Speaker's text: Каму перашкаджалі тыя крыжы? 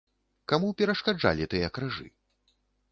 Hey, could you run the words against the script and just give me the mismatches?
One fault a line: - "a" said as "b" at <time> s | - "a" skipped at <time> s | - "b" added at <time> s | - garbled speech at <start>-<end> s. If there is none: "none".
none